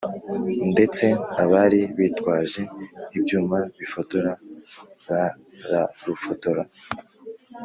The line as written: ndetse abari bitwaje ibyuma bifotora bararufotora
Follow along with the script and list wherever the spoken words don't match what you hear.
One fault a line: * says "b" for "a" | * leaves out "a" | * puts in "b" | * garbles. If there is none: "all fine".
all fine